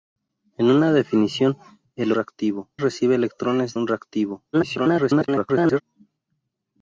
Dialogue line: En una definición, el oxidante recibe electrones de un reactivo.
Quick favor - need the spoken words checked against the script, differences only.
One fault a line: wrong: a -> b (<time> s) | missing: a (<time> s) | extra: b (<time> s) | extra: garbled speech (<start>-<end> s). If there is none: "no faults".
wrong: oxidante -> reactivo (2.1 s)
missing: de (3.8 s)
extra: garbled speech (4.5-5.8 s)